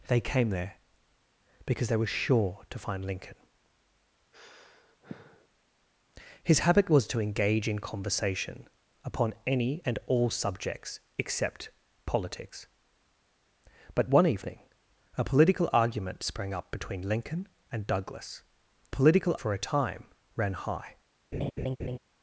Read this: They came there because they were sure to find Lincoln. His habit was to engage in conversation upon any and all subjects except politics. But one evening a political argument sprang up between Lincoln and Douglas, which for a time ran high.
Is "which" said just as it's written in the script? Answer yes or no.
no